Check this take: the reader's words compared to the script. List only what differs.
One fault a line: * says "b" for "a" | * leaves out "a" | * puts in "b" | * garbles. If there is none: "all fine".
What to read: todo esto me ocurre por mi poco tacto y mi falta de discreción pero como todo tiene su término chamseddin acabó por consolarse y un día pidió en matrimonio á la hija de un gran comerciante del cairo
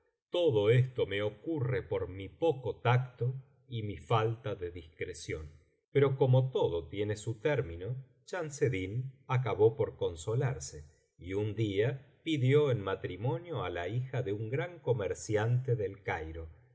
all fine